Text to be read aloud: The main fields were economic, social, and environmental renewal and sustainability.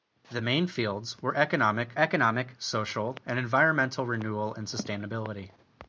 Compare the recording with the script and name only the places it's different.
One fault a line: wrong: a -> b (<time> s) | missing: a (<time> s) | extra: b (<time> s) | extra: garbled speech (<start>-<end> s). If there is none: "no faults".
extra: economic (2.0 s)